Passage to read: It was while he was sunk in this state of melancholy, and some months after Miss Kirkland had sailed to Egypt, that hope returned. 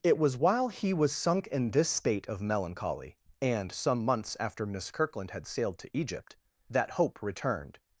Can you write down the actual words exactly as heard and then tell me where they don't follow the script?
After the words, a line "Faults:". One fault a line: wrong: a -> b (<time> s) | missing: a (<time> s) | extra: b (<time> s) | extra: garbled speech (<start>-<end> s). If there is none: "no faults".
It was while he was sunk in this state of melancholy, and some months after Miss Kirkland had sailed to Egypt, that hope returned.
Faults:
no faults